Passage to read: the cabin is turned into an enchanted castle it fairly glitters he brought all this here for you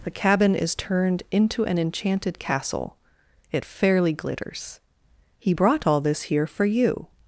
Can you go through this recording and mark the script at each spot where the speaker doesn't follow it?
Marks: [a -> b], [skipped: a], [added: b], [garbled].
the cabin is turned into an enchanted castle it fairly glitters he brought all this here for you